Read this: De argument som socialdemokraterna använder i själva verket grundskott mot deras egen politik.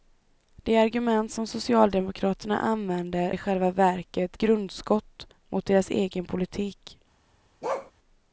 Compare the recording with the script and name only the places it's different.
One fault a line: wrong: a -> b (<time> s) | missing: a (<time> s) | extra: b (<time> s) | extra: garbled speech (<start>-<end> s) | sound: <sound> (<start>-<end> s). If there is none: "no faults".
sound: bark (7.6-7.9 s)